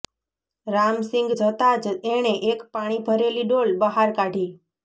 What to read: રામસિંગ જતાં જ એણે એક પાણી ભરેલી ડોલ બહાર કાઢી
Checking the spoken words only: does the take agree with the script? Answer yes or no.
yes